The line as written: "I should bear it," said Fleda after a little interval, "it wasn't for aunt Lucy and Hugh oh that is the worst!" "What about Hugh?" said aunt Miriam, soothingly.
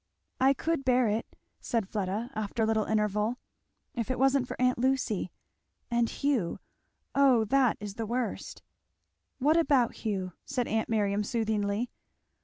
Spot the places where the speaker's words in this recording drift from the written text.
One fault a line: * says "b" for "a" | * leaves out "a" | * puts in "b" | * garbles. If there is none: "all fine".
* says "could" for "should"
* puts in "if"